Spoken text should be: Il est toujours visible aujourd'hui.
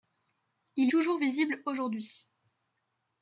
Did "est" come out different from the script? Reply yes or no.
yes